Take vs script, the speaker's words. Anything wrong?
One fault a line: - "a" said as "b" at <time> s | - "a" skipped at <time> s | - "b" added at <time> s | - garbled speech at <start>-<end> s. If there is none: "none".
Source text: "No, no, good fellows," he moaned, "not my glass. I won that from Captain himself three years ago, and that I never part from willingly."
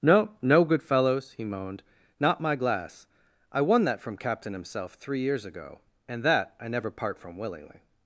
none